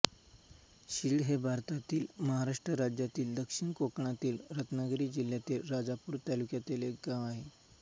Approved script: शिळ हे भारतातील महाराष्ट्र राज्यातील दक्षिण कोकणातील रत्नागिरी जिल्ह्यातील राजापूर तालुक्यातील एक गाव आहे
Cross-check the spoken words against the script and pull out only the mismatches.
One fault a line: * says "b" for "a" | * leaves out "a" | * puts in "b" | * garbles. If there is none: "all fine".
all fine